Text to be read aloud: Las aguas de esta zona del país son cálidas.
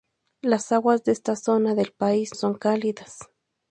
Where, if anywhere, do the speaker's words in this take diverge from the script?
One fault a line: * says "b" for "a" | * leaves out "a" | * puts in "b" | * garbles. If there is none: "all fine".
all fine